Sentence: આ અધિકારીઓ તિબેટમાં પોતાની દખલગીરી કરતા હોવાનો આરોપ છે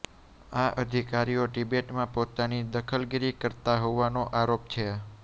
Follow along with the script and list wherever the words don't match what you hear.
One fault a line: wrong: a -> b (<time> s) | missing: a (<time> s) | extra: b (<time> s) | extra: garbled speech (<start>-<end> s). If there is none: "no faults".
no faults